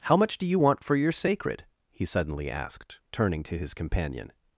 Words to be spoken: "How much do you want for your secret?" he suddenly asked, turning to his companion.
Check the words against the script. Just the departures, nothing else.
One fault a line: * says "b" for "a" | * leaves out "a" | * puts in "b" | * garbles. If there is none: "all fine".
* says "sacred" for "secret"